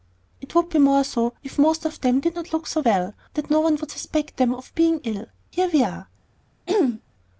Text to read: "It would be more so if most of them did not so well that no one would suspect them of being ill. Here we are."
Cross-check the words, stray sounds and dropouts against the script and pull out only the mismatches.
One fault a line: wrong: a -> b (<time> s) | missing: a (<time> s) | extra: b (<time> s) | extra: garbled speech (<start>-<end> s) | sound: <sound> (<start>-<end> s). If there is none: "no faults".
extra: look (2.5 s)
sound: throat clearing (6.7-7.0 s)